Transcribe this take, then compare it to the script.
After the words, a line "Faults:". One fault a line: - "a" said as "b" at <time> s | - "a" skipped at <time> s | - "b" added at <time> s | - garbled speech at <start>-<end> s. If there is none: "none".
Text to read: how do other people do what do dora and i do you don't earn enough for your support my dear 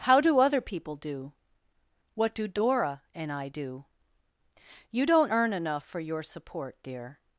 how do other people do what do dora and i do you don't earn enough for your support dear
Faults:
- "my" skipped at 6.8 s